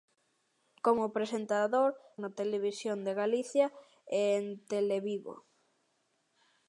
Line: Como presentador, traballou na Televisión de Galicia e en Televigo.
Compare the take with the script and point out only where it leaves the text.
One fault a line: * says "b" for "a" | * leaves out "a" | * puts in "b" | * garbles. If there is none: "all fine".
* leaves out "traballou"